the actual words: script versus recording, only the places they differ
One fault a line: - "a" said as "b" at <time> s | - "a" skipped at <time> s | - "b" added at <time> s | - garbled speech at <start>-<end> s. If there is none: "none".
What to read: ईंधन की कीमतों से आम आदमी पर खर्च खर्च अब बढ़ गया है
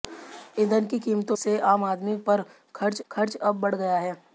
none